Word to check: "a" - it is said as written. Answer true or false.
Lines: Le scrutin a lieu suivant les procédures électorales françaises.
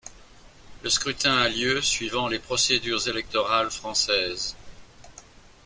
true